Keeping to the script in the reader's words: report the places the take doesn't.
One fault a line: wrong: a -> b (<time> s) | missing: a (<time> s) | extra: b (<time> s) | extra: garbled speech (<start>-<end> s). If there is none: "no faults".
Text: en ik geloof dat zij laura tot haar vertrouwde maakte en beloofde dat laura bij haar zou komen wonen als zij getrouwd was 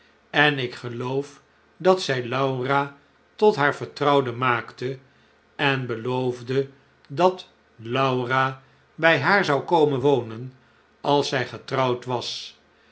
no faults